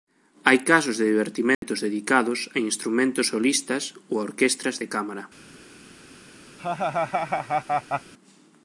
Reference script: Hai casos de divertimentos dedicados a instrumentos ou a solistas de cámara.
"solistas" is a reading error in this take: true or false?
true